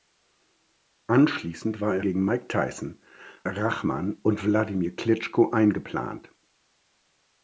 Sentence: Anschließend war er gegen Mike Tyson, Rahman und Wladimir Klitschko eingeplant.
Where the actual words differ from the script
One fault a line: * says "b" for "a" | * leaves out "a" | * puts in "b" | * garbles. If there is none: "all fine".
all fine